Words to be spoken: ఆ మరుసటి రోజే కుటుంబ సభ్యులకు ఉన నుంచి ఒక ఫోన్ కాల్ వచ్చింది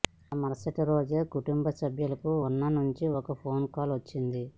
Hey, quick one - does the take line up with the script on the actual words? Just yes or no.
yes